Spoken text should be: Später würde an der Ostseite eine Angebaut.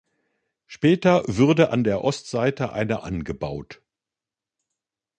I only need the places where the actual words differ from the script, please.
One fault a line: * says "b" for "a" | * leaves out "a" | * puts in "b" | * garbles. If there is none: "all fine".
all fine